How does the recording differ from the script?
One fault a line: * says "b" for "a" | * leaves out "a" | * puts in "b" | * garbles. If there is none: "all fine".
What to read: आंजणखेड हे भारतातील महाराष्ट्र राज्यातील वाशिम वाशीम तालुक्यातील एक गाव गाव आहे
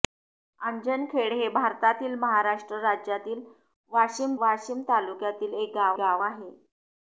all fine